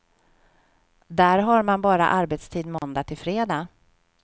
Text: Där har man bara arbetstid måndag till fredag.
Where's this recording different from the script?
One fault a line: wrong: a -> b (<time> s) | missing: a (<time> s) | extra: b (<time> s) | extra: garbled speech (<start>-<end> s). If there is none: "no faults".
no faults